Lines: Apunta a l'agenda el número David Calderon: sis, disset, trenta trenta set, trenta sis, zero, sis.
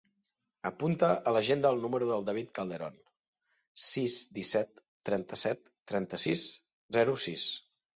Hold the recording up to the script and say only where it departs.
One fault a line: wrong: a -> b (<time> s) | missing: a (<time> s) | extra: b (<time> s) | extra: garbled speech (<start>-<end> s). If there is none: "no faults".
extra: del (2.1 s)
missing: trenta (5.4 s)